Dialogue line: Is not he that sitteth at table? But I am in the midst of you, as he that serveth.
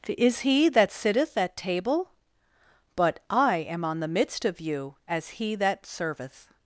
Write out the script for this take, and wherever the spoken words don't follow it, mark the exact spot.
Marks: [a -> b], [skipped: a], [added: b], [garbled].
Is [skipped: not] he that sitteth at table? But I am [in -> on] the midst of you, as he that serveth.